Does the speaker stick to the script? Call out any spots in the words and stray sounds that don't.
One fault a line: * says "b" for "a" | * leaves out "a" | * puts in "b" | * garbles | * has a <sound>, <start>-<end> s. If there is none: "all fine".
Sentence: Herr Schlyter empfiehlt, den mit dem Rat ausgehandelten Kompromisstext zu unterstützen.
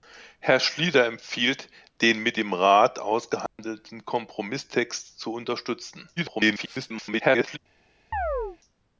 * has a dropout, 3.5-3.6 s
* garbles
* has a chirp, 8.1-8.6 s